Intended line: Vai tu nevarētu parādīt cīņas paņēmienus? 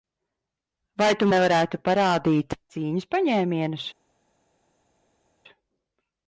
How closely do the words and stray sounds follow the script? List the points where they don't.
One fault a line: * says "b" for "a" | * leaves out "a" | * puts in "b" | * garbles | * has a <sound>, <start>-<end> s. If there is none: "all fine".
all fine